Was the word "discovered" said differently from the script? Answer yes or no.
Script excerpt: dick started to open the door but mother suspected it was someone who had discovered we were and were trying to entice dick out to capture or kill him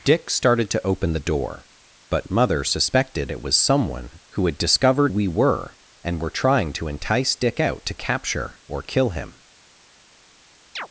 no